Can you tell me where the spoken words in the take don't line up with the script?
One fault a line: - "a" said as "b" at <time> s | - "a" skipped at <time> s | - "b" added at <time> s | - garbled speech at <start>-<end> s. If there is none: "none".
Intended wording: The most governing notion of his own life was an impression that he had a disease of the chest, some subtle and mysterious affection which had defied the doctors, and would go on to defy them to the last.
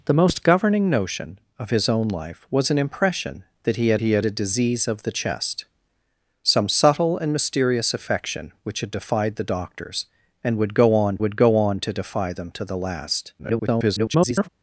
- "he had" added at 4.0 s
- "would go on" added at 11.2 s
- garbled speech at 13.4-14.5 s